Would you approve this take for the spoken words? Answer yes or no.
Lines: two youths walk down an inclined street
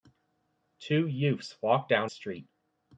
no